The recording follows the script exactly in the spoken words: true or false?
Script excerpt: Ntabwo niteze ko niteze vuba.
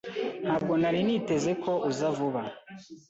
false